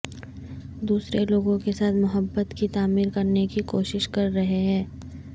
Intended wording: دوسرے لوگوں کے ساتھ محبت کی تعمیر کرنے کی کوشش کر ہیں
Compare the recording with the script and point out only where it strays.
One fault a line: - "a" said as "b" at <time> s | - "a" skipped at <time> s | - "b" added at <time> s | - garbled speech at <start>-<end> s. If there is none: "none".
- "رہے" added at 4.3 s